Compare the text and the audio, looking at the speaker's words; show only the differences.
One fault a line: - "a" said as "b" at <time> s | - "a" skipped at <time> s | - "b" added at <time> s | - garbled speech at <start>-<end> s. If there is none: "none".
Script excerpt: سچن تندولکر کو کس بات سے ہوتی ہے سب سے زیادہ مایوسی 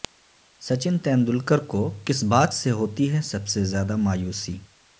none